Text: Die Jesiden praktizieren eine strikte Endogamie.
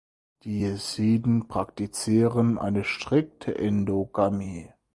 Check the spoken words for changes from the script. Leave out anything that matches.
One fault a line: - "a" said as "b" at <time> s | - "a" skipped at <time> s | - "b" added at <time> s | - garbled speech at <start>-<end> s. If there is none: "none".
none